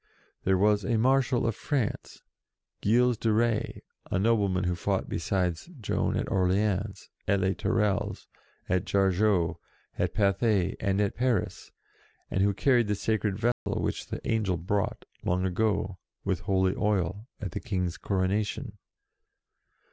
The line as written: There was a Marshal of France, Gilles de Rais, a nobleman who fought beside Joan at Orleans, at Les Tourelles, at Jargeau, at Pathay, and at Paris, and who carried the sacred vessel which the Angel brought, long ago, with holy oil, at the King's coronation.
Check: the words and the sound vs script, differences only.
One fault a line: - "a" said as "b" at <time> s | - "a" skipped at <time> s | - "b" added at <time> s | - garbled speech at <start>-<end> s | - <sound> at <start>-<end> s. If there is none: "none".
- dropout at 13.5-13.7 s